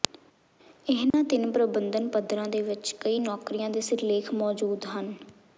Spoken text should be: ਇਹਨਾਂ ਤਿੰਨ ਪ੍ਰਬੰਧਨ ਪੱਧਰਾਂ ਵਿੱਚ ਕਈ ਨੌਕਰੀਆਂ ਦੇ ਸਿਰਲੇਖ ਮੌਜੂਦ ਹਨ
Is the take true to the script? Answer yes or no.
no